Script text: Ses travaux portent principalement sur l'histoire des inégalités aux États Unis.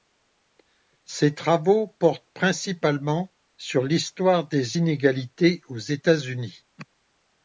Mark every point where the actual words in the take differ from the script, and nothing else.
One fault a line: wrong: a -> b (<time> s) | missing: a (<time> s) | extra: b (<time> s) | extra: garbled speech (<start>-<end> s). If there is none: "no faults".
no faults